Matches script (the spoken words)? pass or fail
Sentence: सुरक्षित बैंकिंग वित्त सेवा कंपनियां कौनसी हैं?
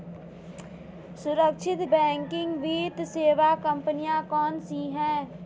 pass